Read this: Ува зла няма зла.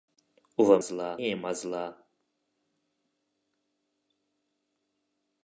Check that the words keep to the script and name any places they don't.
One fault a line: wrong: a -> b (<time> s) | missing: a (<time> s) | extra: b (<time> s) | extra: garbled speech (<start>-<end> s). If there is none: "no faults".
no faults